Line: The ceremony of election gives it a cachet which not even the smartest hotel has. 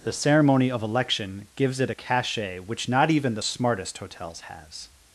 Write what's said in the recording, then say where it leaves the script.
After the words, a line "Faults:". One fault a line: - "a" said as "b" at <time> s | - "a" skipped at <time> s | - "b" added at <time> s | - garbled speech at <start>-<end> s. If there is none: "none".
The ceremony of election gives it a cachet which not even the smartest hotels has.
Faults:
- "hotel" said as "hotels" at 4.0 s